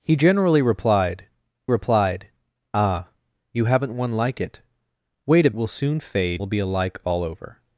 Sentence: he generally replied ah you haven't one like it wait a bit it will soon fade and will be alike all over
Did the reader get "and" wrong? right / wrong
wrong